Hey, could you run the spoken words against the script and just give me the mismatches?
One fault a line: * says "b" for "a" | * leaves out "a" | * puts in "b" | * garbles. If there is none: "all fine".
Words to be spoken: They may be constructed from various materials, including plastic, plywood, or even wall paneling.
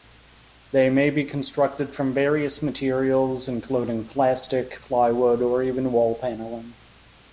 all fine